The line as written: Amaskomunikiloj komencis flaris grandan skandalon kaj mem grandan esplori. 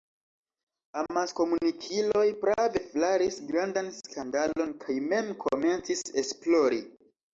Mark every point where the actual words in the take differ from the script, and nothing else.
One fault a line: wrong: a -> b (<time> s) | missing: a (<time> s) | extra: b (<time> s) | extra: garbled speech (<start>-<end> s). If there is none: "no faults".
wrong: komencis -> prave (2.5 s)
wrong: grandan -> komencis (5.5 s)